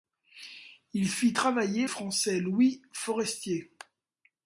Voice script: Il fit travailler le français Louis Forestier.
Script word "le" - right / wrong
wrong